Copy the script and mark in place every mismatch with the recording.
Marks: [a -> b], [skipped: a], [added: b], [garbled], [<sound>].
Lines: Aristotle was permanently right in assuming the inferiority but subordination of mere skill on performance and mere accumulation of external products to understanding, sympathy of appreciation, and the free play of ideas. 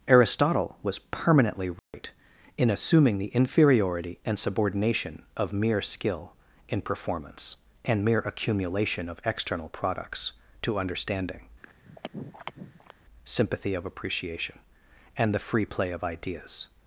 Aristotle was permanently right [dropout] in assuming the inferiority [but -> and] subordination of mere skill [on -> in] performance and mere accumulation of external products to understanding, [throat clearing] sympathy of appreciation, and the free play of ideas.